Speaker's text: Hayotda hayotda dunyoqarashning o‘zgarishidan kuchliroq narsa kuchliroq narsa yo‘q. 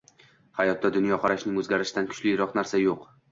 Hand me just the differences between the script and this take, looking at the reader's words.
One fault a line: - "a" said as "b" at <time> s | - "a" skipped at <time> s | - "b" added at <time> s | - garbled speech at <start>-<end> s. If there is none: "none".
- "hayotda" skipped at 0.9 s
- "kuchliroq narsa" skipped at 2.8 s